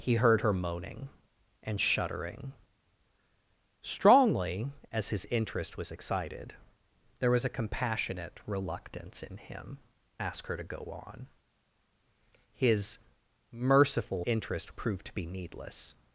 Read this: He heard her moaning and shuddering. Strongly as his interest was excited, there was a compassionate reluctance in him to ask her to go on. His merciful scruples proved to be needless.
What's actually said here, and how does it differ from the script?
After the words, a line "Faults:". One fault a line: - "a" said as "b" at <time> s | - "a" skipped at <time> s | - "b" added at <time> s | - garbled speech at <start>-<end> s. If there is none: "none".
He heard her moaning and shuddering. Strongly as his interest was excited, there was a compassionate reluctance in him ask her to go on. His merciful interest proved to be needless.
Faults:
- "to" skipped at 9.8 s
- "scruples" said as "interest" at 14.2 s